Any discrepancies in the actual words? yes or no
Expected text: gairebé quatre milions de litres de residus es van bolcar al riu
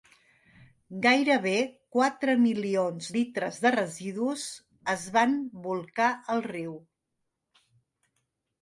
yes